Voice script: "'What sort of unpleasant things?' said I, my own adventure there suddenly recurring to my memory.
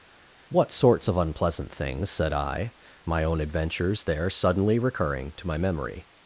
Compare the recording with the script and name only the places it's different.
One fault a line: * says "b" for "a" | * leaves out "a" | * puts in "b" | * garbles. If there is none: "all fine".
* says "sorts" for "sort"
* says "adventures" for "adventure"